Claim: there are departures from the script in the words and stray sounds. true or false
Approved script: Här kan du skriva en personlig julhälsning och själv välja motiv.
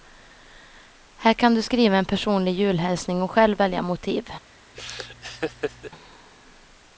true